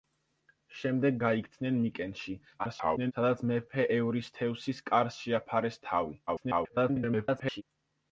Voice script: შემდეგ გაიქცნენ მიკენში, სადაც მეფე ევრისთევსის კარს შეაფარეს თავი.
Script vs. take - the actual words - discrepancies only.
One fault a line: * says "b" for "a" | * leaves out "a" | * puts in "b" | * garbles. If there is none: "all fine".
* garbles
* garbles